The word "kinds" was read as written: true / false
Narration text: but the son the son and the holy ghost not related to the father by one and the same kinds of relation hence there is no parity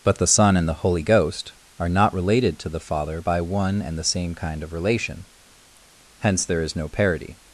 false